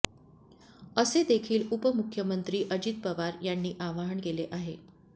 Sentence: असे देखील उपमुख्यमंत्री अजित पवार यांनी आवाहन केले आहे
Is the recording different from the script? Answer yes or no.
no